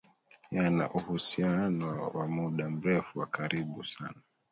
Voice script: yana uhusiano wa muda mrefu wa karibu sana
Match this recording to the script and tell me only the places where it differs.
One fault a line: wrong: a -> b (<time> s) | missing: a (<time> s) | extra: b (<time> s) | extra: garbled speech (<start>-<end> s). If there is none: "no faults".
no faults